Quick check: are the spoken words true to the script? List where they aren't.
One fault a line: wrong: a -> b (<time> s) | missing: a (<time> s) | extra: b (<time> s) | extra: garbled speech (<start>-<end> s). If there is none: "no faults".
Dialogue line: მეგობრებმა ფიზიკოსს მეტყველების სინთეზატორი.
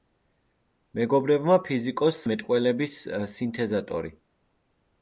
no faults